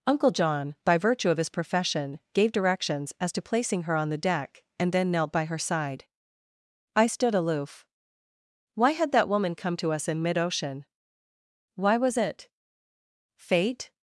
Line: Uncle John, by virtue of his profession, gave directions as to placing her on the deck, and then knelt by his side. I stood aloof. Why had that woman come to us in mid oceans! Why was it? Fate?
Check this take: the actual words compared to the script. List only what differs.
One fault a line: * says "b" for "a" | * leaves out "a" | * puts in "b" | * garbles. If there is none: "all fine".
* says "her" for "his"
* says "ocean" for "oceans"